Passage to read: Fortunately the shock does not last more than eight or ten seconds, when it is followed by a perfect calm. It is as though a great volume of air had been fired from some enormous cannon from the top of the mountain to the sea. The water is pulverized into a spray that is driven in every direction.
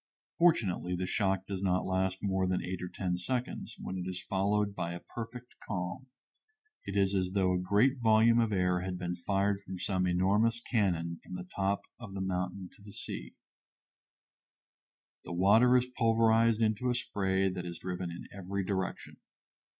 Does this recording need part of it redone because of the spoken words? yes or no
no